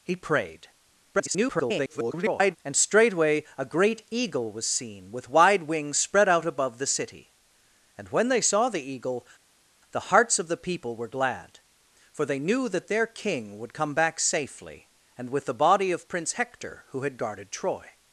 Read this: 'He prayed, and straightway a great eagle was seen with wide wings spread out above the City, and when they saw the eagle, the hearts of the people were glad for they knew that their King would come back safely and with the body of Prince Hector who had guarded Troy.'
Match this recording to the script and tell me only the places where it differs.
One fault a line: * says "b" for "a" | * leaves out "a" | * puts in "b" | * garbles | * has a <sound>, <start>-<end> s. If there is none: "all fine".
* garbles